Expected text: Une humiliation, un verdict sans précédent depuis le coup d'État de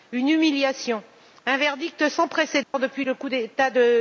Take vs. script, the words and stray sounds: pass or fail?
fail